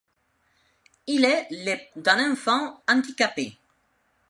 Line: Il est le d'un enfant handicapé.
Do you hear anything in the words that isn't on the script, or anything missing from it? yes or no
no